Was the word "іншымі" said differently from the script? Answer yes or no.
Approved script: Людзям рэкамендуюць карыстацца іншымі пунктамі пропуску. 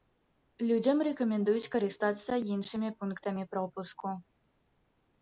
no